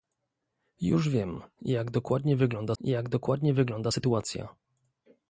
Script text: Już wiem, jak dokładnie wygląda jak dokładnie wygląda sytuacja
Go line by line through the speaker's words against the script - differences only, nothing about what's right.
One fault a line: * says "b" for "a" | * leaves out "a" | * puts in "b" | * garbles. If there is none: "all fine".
all fine